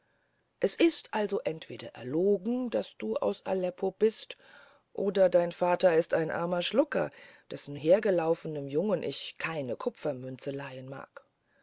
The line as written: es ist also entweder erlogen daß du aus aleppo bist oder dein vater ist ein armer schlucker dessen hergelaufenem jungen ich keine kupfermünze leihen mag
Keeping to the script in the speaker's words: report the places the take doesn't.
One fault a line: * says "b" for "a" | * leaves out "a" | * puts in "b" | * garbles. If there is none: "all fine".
all fine